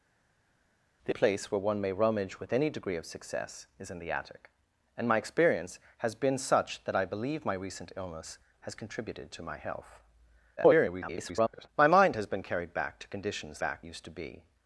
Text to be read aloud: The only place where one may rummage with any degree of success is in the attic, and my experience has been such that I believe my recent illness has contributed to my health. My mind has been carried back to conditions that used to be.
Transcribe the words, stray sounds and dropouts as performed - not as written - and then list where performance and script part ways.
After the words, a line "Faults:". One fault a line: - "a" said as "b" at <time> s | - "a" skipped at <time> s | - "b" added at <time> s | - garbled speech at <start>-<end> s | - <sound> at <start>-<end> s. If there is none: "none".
The place where one may rummage with any degree of success is in the attic, and my experience has been such that I believe my recent illness has contributed to my health. [garbled] My mind has been carried back to conditions back used to be.
Faults:
- "only" skipped at 1.1 s
- garbled speech at 10.6-11.7 s
- "that" said as "back" at 13.6 s